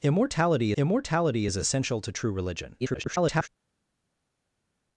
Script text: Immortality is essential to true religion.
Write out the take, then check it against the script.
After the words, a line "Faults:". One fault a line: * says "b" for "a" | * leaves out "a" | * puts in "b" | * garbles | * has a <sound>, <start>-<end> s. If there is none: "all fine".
Immortality immortality is essential to true religion. [garbled]
Faults:
* puts in "immortality"
* garbles